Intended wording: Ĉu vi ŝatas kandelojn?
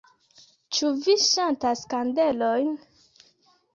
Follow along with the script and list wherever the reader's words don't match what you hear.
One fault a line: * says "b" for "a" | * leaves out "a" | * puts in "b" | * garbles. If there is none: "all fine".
all fine